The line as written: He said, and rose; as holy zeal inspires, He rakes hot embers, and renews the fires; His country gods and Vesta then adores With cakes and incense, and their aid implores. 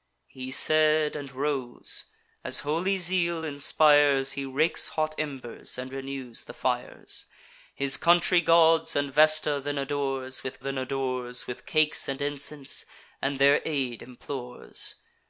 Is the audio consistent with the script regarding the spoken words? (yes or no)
no